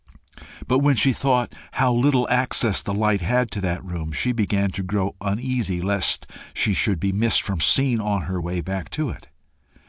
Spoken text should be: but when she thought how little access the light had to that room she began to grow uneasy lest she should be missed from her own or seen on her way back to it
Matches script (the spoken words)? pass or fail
fail